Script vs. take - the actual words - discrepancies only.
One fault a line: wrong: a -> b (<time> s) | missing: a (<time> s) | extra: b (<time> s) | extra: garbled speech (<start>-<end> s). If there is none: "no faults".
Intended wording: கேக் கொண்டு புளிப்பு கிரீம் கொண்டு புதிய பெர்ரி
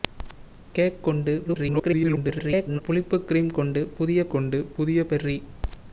extra: garbled speech (1.5-2.8 s)
extra: கொண்டு புதிய (4.3 s)